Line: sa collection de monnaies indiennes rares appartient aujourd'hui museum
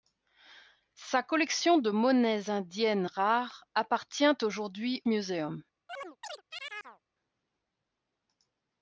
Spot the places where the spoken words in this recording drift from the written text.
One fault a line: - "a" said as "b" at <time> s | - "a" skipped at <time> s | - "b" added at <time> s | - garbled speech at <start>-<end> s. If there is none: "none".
none